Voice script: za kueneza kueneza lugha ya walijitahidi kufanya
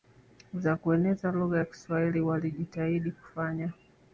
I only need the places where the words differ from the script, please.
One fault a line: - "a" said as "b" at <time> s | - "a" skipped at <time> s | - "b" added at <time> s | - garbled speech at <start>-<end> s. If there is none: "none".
- "kueneza" skipped at 1.3 s
- "kiswahili" added at 1.6 s